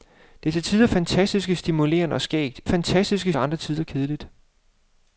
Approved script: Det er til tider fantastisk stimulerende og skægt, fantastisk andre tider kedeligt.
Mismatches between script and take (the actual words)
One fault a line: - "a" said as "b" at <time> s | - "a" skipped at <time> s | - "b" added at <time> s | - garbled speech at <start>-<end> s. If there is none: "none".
none